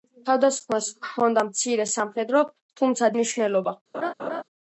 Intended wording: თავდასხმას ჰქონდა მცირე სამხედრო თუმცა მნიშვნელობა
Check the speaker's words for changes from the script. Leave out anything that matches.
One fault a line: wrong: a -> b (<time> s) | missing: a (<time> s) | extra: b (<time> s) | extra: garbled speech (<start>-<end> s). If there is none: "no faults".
no faults